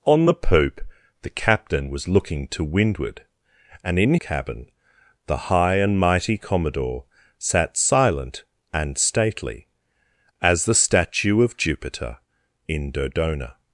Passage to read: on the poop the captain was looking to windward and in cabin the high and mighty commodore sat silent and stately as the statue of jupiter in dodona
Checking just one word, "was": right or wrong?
right